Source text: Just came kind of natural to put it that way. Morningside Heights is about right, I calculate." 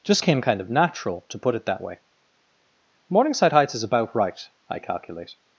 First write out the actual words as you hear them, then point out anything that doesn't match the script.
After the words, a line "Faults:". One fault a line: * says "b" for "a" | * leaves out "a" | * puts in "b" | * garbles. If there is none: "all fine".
Just came kind of natural to put it that way. Morningside Heights is about right, I calculate."
Faults:
all fine